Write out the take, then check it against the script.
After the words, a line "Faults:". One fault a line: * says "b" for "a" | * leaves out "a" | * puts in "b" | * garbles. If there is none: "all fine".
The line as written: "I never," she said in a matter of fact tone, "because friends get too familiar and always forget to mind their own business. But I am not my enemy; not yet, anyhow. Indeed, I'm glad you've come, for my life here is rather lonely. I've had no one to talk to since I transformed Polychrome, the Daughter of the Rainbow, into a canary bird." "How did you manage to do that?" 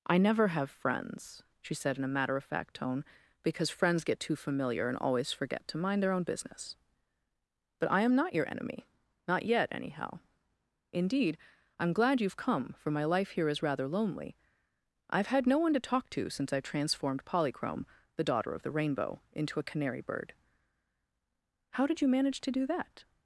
"I never have friends," she said in a matter of fact tone, "because friends get too familiar and always forget to mind their own business. But I am not your enemy; not yet, anyhow. Indeed, I'm glad you've come, for my life here is rather lonely. I've had no one to talk to since I transformed Polychrome, the Daughter of the Rainbow, into a canary bird." "How did you manage to do that?"
Faults:
* puts in "have friends"
* says "your" for "my"